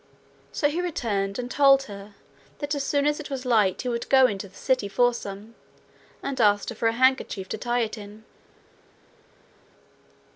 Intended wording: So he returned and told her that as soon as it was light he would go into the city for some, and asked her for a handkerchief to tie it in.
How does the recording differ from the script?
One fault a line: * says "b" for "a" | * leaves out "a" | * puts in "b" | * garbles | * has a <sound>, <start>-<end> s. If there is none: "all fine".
all fine